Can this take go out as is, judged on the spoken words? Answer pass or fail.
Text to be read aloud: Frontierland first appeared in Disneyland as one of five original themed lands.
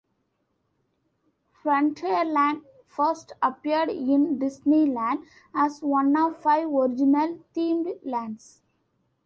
pass